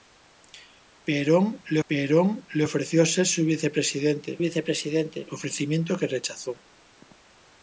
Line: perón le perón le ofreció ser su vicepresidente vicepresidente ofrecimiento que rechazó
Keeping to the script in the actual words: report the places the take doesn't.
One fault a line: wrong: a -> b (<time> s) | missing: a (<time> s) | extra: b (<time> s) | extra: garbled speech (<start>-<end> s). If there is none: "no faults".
no faults